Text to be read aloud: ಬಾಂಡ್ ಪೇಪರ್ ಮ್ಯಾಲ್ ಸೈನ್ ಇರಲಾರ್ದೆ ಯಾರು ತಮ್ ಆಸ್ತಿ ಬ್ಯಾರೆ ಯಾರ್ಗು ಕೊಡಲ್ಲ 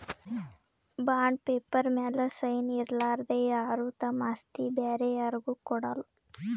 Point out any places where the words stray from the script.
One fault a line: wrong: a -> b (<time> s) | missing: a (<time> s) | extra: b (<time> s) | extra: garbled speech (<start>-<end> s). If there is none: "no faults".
no faults